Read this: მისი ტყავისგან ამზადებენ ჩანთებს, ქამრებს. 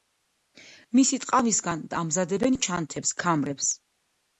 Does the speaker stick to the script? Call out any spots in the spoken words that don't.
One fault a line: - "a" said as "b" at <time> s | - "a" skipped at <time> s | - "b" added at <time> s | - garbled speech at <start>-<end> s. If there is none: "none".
none